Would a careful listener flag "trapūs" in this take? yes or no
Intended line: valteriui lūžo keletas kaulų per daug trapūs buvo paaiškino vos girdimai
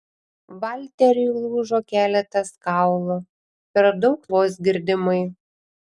yes